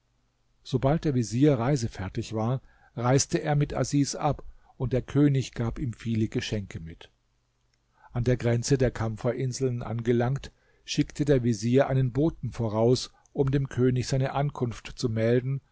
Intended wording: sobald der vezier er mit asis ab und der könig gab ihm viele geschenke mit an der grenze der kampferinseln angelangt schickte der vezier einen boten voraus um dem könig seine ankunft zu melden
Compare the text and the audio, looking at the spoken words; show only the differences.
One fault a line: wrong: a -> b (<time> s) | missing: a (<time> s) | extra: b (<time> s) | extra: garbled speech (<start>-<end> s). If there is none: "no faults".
extra: reisefertig war reiste (1.6 s)